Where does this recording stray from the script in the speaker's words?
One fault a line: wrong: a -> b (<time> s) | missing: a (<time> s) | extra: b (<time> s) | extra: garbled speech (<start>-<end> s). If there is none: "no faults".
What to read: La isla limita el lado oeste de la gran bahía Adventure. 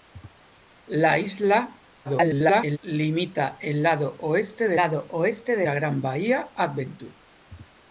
extra: garbled speech (2.0-2.8 s)
extra: lado oeste de (4.8 s)